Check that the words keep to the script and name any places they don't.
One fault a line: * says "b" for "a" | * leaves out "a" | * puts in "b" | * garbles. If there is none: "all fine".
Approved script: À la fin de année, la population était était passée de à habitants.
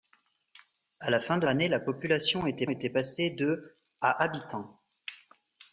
all fine